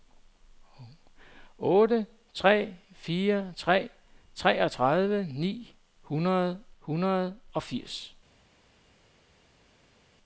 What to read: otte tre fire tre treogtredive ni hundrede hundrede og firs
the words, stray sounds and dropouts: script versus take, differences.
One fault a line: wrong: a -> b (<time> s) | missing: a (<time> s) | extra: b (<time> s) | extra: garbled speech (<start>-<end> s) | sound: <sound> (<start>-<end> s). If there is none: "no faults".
no faults